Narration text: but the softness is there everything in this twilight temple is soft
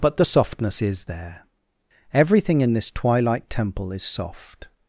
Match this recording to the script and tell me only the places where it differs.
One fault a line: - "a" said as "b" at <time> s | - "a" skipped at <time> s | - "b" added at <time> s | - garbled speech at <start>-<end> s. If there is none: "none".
none